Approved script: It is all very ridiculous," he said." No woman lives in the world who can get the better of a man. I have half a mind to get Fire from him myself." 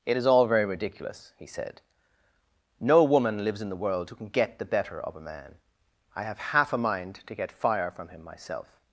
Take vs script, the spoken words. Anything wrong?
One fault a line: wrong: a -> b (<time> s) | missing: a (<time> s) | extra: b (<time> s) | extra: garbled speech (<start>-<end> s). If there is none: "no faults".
no faults